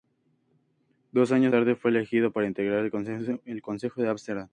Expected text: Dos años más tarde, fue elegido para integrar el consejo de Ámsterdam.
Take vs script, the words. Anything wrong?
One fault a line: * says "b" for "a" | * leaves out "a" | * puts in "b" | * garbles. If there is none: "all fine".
* leaves out "más"